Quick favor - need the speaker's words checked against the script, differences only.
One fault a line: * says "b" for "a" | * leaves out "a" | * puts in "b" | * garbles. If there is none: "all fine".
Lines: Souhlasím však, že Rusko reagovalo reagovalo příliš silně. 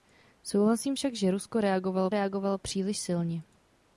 all fine